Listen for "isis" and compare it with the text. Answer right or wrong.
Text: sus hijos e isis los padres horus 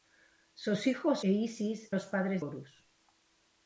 right